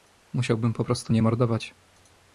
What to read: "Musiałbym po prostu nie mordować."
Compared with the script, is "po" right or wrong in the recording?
right